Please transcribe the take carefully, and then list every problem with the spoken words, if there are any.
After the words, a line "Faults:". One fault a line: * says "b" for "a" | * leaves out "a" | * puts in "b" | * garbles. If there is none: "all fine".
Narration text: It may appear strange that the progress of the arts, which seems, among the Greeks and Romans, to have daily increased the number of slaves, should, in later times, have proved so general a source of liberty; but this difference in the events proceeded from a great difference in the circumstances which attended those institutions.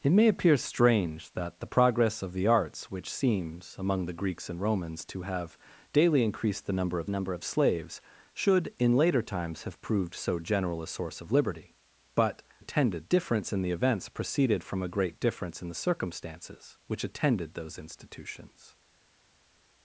It may appear strange that the progress of the arts, which seems, among the Greeks and Romans, to have daily increased the number of number of slaves, should, in later times, have proved so general a source of liberty; but attended difference in the events proceeded from a great difference in the circumstances which attended those institutions.
Faults:
* puts in "number of"
* says "attended" for "this"